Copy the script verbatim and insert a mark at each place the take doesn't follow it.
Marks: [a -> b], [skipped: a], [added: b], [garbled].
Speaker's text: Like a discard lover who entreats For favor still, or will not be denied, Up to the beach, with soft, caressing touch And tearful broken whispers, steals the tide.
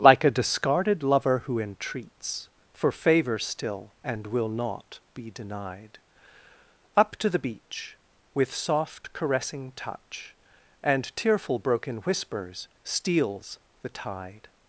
Like a [discard -> discarded] lover who entreats For favor still, [or -> and] will not be denied, Up to the beach, with soft, caressing touch And tearful broken whispers, steals the tide.